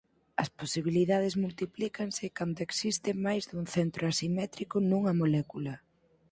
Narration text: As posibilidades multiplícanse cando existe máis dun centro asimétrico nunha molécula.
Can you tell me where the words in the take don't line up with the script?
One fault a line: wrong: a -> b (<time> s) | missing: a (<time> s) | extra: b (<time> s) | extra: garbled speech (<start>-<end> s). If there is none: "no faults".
no faults